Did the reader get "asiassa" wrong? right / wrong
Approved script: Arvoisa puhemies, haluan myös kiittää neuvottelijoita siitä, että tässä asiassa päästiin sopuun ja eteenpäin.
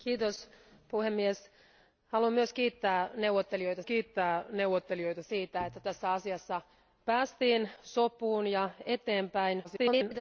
right